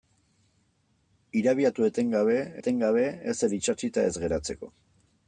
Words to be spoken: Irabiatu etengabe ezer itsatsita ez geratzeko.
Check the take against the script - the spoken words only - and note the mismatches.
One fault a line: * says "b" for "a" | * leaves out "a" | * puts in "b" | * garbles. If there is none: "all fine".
* puts in "etengabe"